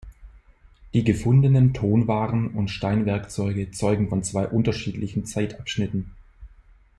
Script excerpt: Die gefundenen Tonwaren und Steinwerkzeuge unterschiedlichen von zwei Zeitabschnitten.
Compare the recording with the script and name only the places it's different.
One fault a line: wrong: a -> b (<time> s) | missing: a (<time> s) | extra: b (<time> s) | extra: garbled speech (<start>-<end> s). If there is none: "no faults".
wrong: unterschiedlichen -> zeugen (3.7 s)
extra: unterschiedlichen (4.5 s)